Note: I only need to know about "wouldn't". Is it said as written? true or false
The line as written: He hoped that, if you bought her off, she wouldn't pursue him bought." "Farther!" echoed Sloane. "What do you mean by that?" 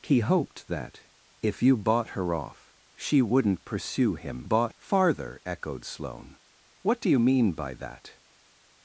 true